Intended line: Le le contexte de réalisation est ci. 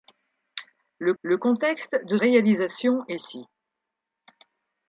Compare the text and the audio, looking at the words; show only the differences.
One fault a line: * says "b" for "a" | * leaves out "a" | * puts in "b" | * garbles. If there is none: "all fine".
all fine